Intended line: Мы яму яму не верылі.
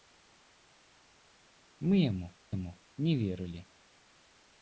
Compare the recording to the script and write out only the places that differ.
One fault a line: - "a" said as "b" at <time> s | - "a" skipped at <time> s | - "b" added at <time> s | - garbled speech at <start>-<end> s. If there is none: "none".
none